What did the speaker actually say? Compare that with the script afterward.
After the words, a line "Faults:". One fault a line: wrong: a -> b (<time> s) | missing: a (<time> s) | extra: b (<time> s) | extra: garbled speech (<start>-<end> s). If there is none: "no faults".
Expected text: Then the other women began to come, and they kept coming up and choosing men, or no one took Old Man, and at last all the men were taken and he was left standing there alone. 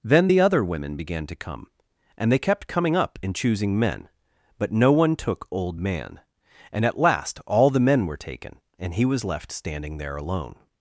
Then the other women began to come, and they kept coming up and choosing men, but no one took Old Man, and at last all the men were taken and he was left standing there alone.
Faults:
wrong: or -> but (4.6 s)